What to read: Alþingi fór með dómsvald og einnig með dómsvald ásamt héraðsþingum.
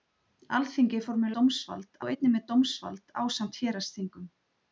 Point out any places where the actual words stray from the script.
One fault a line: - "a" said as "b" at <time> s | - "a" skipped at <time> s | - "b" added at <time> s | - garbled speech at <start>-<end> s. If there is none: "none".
none